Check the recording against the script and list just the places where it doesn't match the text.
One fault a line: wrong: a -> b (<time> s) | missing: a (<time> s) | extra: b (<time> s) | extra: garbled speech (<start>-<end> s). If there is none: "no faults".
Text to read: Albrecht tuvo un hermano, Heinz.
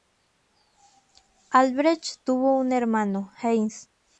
no faults